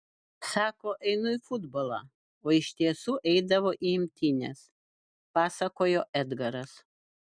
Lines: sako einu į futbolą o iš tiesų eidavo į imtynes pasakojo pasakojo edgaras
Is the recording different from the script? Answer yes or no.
yes